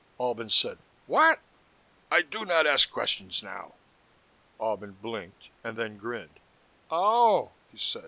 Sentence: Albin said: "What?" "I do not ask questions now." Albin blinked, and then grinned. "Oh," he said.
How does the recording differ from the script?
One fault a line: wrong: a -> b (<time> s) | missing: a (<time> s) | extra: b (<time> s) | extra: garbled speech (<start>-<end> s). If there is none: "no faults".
no faults